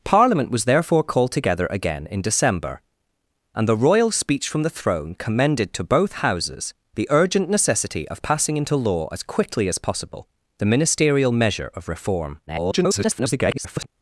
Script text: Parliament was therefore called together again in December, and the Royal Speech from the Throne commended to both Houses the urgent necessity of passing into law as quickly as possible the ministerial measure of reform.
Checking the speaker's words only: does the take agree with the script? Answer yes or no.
no